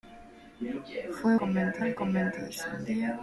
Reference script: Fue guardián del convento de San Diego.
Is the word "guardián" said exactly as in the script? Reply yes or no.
no